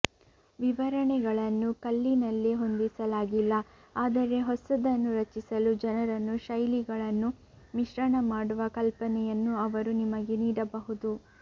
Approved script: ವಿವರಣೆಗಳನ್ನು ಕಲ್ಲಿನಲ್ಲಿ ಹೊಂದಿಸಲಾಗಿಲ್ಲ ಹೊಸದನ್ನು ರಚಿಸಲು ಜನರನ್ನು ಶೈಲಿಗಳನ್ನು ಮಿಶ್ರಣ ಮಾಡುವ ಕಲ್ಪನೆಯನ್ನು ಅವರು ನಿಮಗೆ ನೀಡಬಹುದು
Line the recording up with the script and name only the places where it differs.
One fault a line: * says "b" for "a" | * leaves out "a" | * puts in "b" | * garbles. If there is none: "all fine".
* puts in "ಆದರೆ"